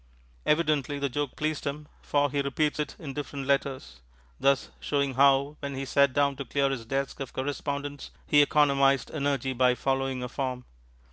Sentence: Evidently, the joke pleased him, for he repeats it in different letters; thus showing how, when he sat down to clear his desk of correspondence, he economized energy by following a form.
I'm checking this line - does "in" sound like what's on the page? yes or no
yes